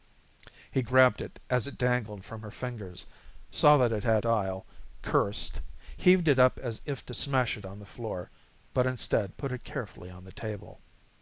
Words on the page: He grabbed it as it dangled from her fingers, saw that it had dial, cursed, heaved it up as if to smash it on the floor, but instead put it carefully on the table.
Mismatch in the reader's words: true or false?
false